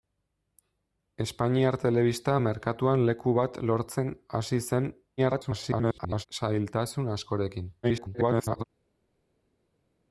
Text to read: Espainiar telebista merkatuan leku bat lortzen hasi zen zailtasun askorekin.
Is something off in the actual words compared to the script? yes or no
yes